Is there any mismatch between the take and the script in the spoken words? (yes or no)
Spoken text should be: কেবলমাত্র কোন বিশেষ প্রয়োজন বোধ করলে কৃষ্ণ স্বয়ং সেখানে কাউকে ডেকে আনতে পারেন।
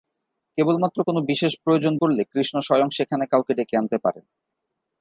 yes